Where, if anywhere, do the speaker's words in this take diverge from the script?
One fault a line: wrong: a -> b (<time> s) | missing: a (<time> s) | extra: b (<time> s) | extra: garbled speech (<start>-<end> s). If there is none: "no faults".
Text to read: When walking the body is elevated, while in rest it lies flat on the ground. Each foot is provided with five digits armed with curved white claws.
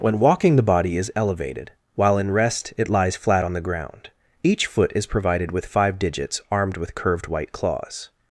no faults